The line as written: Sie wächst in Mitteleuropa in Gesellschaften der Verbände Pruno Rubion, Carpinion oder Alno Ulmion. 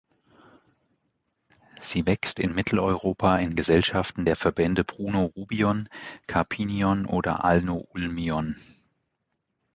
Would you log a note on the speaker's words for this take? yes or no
no